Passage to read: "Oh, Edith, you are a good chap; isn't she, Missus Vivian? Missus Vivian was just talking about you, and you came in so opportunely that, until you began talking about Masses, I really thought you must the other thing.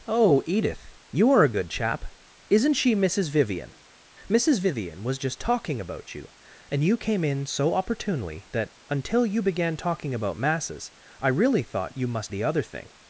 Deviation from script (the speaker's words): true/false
false